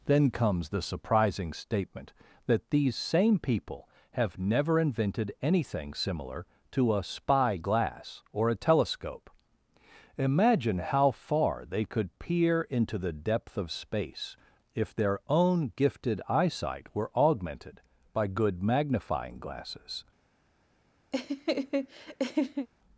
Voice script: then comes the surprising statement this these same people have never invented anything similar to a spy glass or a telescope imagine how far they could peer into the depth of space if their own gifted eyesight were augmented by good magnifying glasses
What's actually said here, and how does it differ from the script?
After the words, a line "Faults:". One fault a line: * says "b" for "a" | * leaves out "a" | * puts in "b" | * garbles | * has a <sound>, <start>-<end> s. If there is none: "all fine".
then comes the surprising statement that these same people have never invented anything similar to a spy glass or a telescope imagine how far they could peer into the depth of space if their own gifted eyesight were augmented by good magnifying glasses
Faults:
* says "that" for "this"
* has a laugh, 21.1-22.7 s